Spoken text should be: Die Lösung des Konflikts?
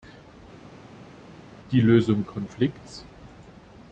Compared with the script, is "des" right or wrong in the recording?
wrong